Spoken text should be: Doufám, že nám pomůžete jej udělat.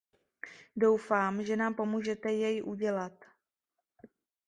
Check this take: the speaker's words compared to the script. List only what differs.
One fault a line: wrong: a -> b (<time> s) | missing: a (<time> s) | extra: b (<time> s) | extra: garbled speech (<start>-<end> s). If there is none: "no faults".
no faults